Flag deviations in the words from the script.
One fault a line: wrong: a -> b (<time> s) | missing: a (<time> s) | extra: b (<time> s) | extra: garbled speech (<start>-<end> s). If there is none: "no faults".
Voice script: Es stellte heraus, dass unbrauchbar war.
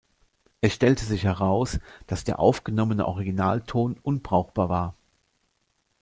extra: sich (1.1 s)
extra: der aufgenommene Originalton (2.2 s)